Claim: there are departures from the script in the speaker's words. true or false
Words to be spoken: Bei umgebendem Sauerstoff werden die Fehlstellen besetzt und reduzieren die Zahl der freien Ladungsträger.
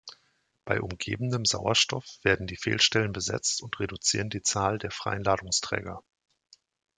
false